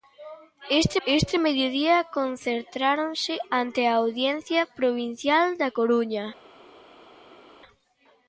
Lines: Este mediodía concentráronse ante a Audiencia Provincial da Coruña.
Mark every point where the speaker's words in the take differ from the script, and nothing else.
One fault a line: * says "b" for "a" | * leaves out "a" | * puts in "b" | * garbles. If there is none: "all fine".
* puts in "este"